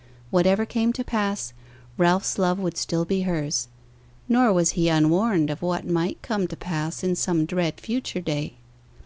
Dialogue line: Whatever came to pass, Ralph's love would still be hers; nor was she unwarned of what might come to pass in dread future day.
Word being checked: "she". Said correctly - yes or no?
no